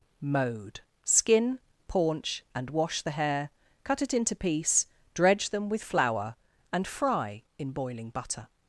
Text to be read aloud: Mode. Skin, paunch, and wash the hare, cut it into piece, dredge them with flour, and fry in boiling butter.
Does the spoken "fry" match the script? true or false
true